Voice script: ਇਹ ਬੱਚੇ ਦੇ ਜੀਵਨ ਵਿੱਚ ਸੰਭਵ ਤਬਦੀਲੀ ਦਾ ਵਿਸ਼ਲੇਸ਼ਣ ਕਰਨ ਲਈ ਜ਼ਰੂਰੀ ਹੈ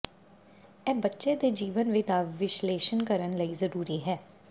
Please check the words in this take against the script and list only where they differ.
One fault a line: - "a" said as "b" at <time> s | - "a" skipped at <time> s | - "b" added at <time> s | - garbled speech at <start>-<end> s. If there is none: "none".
- "ਸੰਭਵ ਤਬਦੀਲੀ" skipped at 2.1 s